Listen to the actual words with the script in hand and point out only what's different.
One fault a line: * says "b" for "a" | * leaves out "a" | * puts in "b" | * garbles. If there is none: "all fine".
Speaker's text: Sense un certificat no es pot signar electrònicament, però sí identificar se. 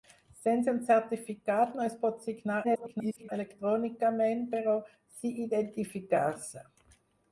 * garbles